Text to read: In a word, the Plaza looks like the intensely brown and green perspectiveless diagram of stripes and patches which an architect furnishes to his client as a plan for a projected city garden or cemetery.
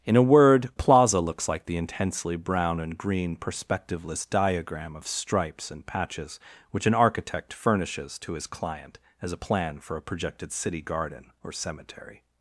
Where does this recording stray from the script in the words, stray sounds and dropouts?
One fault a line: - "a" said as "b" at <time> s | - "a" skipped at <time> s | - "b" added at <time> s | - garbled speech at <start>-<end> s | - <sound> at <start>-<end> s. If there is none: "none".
- "the" skipped at 0.7 s